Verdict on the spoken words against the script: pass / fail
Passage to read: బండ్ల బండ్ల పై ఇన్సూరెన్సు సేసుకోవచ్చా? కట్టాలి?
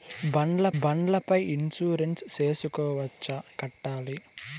pass